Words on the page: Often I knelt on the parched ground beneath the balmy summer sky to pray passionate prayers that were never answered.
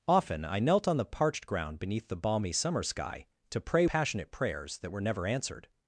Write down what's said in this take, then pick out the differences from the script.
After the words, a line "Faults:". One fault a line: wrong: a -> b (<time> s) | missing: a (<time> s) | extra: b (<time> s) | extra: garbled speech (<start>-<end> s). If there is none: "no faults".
Often I knelt on the parched ground beneath the balmy summer sky to pray passionate prayers that were never answered.
Faults:
no faults